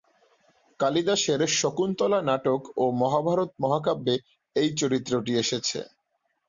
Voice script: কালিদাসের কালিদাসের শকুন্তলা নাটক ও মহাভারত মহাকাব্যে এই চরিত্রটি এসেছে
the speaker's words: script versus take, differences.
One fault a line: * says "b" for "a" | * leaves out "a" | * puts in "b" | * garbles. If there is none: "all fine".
* leaves out "কালিদাসের"